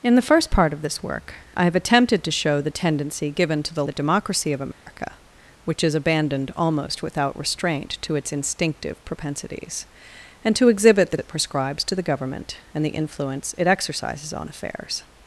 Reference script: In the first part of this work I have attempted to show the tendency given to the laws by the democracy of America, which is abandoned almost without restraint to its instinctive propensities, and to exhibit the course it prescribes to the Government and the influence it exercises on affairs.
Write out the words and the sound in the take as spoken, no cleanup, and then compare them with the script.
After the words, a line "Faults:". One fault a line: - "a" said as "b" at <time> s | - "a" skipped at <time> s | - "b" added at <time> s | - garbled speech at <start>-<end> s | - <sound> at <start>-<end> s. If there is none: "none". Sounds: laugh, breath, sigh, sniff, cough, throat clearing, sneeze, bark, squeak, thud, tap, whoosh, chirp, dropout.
In the first part of this work I have attempted to show the tendency given to the the democracy of America, which is abandoned almost without restraint to its instinctive propensities, and to exhibit the it prescribes to the Government and the influence it exercises on affairs.
Faults:
- "laws by" skipped at 3.8 s
- dropout at 4.7-4.9 s
- "course" skipped at 11.2 s